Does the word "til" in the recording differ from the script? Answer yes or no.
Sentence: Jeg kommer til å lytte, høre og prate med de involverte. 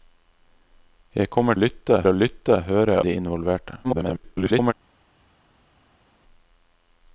yes